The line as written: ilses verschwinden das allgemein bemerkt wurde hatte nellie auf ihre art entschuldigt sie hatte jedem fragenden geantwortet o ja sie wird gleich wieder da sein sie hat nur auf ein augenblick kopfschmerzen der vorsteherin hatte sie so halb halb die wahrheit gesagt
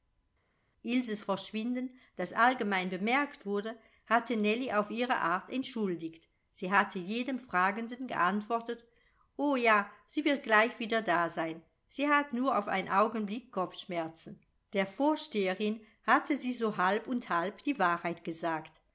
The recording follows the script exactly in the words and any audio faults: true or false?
false